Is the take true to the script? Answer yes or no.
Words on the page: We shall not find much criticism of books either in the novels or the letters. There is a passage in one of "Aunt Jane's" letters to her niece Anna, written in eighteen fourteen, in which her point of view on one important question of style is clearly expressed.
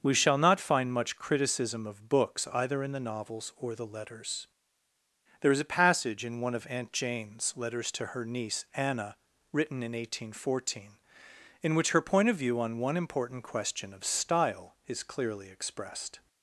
yes